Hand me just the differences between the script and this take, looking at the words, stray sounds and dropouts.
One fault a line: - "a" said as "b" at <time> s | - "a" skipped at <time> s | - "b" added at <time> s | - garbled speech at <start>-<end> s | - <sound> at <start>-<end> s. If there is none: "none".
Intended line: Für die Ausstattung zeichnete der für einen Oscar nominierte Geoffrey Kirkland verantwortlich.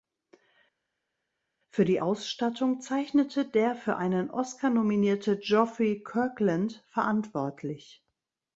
none